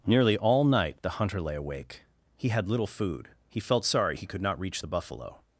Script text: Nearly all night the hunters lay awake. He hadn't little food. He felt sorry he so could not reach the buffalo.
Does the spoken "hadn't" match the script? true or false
false